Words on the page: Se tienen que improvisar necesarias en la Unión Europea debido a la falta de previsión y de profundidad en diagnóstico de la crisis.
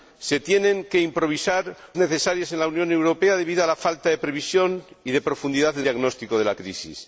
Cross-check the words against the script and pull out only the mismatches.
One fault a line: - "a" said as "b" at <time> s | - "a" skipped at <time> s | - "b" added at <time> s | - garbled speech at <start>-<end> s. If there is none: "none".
none